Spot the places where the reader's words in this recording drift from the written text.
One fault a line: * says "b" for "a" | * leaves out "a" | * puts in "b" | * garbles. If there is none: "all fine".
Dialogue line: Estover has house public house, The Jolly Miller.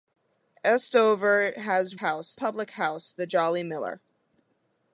all fine